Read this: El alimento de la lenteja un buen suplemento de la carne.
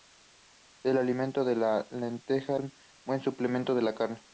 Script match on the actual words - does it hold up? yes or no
yes